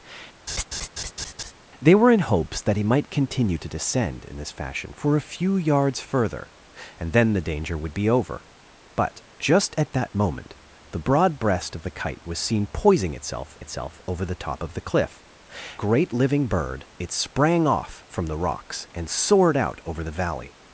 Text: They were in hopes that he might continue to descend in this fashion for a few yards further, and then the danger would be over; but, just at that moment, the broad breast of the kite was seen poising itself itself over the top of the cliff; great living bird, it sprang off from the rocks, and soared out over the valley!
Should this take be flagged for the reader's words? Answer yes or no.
no